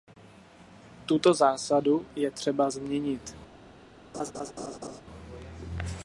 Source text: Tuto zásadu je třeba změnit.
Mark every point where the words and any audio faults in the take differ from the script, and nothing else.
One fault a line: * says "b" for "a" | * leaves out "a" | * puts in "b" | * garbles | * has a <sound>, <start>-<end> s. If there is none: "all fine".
* has a laugh, 4.1-5.0 s